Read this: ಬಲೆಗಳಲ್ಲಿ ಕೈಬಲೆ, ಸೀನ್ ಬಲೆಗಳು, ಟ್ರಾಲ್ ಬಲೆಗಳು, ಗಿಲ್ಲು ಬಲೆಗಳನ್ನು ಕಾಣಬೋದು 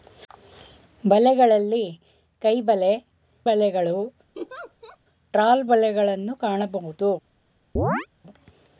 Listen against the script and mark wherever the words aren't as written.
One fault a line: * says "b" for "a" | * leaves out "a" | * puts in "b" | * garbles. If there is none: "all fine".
* leaves out "ಸೀನ್"
* leaves out "ಬಲೆಗಳು ಗಿಲ್ಲು"